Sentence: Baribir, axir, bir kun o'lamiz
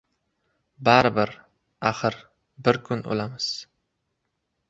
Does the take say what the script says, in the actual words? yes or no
yes